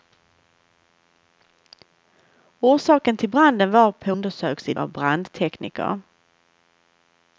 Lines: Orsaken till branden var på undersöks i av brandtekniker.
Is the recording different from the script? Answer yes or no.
no